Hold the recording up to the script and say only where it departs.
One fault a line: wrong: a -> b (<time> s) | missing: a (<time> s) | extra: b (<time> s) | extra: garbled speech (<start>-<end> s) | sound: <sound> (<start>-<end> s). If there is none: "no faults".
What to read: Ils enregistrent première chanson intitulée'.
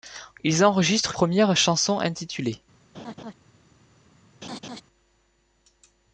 sound: laugh (2.9-3.3 s)
sound: laugh (4.4-4.8 s)